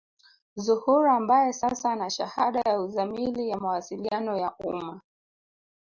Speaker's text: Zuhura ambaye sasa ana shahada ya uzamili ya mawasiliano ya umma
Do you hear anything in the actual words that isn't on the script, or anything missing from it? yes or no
no